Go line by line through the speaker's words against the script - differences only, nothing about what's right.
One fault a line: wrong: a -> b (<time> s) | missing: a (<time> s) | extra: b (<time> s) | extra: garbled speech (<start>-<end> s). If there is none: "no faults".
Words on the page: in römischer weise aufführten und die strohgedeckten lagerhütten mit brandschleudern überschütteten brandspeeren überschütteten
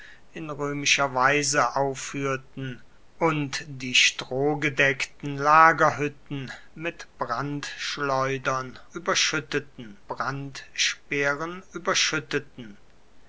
no faults